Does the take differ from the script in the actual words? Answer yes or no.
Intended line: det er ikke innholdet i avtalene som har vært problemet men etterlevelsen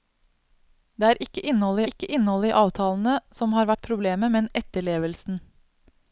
yes